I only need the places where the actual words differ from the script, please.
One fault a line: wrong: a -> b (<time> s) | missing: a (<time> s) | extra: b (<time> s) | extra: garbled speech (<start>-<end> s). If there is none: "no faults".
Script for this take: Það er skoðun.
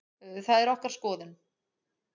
extra: okkar (0.7 s)